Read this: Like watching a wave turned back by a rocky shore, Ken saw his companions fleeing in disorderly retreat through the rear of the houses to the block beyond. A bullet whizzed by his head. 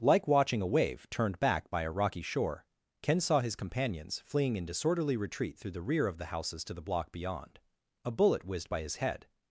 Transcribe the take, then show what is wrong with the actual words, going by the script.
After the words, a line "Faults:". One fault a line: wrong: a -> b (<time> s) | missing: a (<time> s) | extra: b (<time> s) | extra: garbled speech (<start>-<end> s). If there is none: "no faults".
Like watching a wave turned back by a rocky shore, Ken saw his companions fleeing in disorderly retreat through the rear of the houses to the block beyond. A bullet whizzed by his head.
Faults:
no faults